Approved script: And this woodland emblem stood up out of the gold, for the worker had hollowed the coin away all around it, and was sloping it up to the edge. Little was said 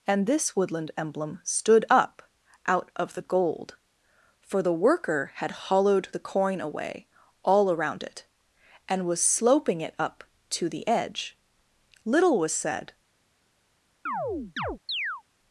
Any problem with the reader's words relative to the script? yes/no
no